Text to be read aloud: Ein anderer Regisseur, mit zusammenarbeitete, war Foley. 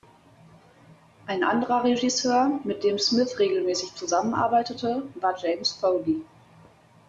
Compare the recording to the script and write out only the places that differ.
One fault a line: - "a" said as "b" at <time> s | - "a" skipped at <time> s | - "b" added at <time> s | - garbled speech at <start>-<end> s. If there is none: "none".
- "dem Smith regelmäßig" added at 2.8 s
- "James" added at 5.4 s